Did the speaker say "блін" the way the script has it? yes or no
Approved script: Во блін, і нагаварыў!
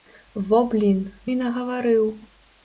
yes